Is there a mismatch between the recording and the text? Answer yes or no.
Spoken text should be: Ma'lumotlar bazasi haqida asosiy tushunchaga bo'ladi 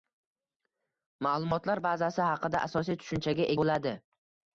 no